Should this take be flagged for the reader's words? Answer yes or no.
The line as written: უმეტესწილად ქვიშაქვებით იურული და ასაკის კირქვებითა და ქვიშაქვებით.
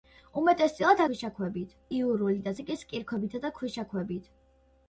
no